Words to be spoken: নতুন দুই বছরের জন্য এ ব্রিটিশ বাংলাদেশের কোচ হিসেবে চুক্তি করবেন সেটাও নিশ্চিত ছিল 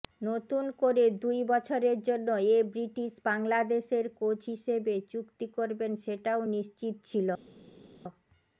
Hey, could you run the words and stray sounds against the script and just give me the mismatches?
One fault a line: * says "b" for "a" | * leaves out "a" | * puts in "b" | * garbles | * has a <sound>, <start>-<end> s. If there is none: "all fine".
* puts in "করে"